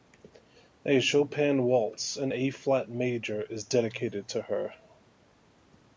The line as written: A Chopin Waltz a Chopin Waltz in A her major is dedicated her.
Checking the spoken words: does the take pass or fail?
fail